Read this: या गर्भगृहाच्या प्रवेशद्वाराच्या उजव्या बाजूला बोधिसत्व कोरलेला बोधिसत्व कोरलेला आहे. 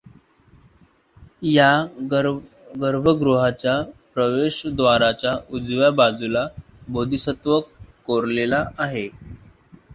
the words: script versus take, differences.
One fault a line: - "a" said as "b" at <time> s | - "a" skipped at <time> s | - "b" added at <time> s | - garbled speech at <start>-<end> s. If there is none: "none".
- "बोधिसत्व कोरलेला" skipped at 8.6 s